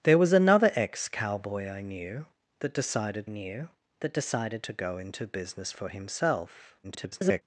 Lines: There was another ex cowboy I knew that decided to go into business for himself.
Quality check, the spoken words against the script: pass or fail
fail